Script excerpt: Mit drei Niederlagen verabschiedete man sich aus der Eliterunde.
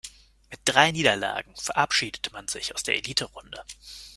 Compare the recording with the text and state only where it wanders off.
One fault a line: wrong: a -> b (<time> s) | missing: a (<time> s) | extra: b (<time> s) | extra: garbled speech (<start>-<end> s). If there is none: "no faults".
no faults